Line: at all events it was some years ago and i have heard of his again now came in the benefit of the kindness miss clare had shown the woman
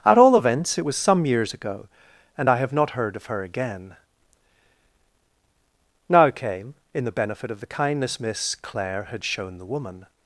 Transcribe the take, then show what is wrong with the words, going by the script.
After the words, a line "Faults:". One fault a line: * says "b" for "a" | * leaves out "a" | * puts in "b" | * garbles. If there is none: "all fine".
at all events it was some years ago and i have not heard of her again now came in the benefit of the kindness miss clare had shown the woman
Faults:
* puts in "not"
* says "her" for "his"